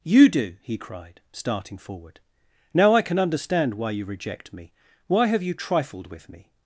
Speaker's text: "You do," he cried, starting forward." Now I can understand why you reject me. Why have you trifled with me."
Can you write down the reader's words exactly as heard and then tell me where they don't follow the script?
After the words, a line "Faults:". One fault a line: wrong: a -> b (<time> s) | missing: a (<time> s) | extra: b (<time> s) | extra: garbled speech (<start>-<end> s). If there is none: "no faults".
"You do," he cried, starting forward." Now I can understand why you reject me. Why have you trifled with me."
Faults:
no faults